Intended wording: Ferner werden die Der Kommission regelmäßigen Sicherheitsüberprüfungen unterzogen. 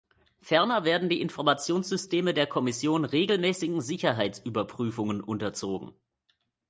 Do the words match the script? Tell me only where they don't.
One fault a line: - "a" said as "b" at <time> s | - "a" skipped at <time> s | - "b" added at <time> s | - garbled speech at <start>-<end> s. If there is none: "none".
- "Informationssysteme" added at 1.2 s